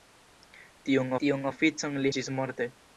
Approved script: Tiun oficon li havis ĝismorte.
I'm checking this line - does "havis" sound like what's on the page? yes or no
no